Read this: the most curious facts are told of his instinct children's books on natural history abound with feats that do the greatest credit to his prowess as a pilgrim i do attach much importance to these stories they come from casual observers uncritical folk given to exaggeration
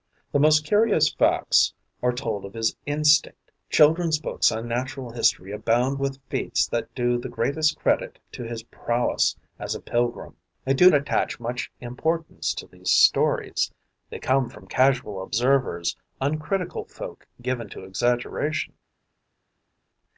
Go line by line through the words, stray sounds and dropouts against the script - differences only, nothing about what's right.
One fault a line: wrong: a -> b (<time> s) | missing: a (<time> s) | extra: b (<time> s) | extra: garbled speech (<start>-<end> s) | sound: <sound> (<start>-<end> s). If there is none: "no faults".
no faults